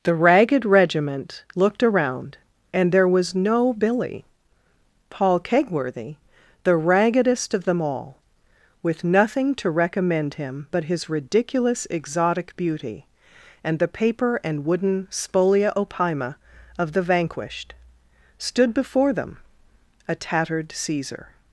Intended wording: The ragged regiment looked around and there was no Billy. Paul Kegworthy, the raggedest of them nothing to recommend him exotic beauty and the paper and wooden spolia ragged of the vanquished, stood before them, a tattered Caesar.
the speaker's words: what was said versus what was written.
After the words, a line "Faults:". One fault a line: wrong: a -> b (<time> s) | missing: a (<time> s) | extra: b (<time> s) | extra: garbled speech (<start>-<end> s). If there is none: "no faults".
The ragged regiment looked around and there was no Billy. Paul Kegworthy, the raggedest of them all, with nothing to recommend him but his ridiculous exotic beauty and the paper and wooden spolia opima of the vanquished, stood before them, a tattered Caesar.
Faults:
extra: all with (7.8 s)
extra: but his ridiculous (10.7 s)
wrong: ragged -> opima (15.7 s)